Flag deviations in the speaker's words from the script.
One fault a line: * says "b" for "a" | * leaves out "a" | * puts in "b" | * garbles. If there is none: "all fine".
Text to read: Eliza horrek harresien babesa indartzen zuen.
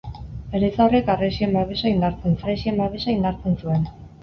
* puts in "harresien babesa indartzen"